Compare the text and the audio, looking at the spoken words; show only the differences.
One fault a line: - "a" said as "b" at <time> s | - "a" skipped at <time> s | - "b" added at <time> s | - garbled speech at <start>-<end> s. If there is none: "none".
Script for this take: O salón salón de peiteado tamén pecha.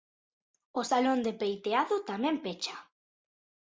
- "salón" skipped at 1.2 s